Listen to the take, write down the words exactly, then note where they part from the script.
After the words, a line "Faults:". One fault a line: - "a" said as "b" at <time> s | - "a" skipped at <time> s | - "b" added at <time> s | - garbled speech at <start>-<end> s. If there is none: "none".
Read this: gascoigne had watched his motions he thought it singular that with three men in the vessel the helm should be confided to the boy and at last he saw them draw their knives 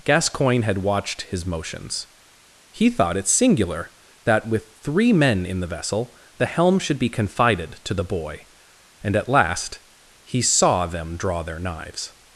gascoigne had watched his motions he thought it singular that with three men in the vessel the helm should be confided to the boy and at last he saw them draw their knives
Faults:
none